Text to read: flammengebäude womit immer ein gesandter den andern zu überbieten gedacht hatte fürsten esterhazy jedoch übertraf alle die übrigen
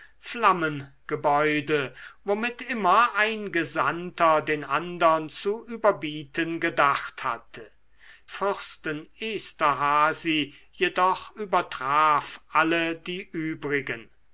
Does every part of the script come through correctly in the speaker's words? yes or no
yes